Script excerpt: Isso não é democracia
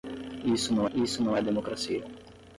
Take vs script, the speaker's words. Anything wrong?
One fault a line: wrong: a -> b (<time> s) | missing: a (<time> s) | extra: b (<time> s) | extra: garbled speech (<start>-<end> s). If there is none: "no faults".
extra: isso não (0.9 s)